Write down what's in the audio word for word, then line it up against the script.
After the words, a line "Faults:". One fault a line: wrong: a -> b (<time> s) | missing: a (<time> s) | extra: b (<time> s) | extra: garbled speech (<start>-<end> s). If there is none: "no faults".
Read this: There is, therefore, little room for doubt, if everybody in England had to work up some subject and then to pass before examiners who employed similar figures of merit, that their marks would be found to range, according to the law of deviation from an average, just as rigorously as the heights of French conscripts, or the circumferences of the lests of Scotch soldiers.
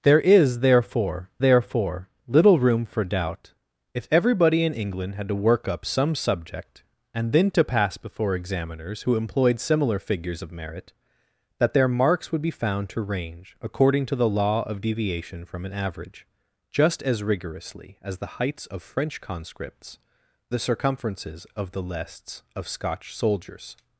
There is, therefore therefore, little room for doubt, if everybody in England had to work up some subject and then to pass before examiners who employed similar figures of merit, that their marks would be found to range, according to the law of deviation from an average, just as rigorously as the heights of French conscripts, the circumferences of the lests of Scotch soldiers.
Faults:
extra: therefore (1.4 s)
missing: or (20.0 s)